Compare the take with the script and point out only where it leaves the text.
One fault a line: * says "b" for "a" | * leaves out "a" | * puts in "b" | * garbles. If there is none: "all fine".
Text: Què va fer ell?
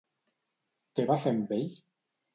* puts in "amb"